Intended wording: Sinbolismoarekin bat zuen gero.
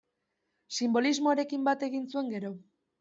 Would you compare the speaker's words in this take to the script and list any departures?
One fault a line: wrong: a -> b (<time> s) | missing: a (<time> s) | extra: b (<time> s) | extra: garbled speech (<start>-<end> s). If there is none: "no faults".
extra: egin (1.9 s)